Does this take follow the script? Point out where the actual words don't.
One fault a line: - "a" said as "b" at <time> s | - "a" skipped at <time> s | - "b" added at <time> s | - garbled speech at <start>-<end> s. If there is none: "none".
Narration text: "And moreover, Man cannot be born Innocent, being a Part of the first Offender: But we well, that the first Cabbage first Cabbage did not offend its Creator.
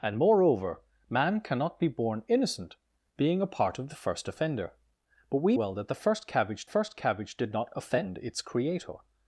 none